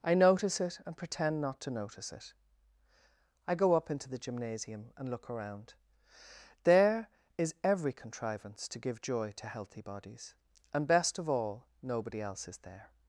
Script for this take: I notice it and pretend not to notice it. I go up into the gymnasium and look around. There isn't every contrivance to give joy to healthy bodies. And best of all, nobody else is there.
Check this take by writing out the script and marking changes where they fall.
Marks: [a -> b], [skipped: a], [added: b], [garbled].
I notice it and pretend not to notice it. I go up into the gymnasium and look around. There [isn't -> is] every contrivance to give joy to healthy bodies. And best of all, nobody else is there.